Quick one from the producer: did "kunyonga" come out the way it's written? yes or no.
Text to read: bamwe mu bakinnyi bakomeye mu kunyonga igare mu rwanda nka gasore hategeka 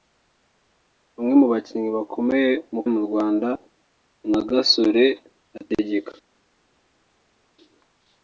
no